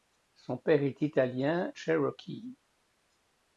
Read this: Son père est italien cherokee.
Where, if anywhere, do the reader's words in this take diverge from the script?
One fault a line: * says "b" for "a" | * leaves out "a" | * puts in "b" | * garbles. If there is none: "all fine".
all fine